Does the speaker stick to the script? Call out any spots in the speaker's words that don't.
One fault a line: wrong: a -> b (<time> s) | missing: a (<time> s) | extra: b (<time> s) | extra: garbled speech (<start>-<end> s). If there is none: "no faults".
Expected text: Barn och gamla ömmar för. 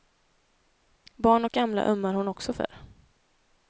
extra: hon också (2.1 s)